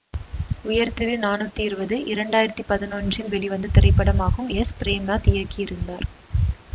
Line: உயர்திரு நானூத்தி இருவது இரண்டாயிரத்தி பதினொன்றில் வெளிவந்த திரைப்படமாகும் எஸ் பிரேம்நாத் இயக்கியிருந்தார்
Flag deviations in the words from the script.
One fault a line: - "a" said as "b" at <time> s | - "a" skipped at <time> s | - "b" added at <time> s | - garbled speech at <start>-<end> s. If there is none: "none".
none